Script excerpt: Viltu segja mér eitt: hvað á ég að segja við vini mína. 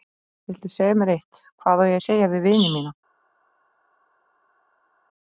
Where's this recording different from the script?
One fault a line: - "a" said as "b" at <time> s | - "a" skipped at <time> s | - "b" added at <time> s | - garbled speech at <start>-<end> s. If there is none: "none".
none